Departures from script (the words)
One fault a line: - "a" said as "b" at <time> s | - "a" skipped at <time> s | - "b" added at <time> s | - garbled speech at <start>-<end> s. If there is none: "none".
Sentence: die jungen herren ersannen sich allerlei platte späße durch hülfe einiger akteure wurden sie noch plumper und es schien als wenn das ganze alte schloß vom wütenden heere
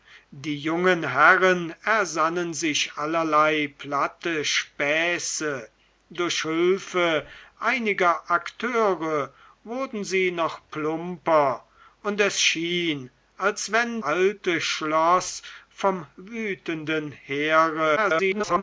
- "das ganze" skipped at 14.0 s
- garbled speech at 18.0-18.6 s